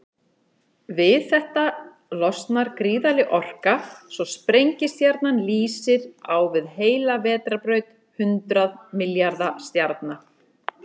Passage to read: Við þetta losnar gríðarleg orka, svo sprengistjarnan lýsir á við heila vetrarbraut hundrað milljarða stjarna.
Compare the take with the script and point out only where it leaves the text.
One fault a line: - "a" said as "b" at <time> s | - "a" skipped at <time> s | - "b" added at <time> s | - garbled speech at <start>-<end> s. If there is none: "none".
none